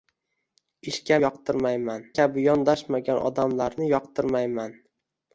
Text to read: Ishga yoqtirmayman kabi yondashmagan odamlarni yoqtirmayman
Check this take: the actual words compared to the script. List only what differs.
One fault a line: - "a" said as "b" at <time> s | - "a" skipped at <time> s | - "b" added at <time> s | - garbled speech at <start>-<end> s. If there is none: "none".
none